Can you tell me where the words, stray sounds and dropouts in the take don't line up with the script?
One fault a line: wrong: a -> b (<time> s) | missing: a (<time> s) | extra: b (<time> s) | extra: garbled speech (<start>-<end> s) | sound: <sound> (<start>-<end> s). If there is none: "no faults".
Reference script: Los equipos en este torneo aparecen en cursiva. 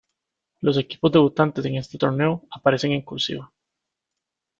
extra: debutantes (1.1 s)